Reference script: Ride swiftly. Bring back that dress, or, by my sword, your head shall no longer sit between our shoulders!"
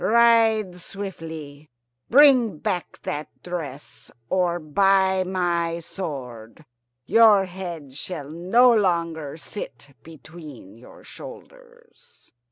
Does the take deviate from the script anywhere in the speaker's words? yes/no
yes